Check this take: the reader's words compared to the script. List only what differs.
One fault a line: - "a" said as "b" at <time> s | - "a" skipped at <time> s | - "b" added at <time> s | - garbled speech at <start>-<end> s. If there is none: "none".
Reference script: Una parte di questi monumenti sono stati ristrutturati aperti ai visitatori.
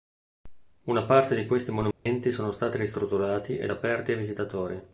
- "ed" added at 3.6 s